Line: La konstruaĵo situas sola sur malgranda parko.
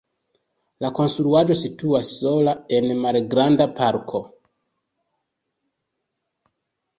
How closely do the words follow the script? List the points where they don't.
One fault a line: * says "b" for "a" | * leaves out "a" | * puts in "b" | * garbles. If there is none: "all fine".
* says "en" for "sur"